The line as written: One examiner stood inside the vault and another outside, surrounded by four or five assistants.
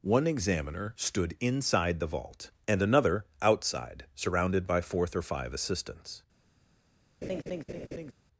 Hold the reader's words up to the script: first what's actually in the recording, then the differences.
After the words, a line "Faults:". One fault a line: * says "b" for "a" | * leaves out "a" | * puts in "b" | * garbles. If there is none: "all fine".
One examiner stood inside the vault and another outside, surrounded by fourth or five assistants.
Faults:
* says "fourth" for "four"